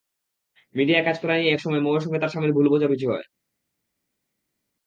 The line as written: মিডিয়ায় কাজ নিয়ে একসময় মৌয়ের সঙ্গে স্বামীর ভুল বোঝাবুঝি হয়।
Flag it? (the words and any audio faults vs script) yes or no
yes